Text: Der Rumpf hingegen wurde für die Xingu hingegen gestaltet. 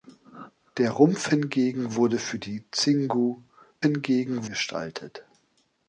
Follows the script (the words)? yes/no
yes